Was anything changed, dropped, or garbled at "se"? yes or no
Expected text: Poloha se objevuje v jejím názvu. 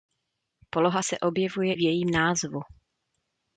no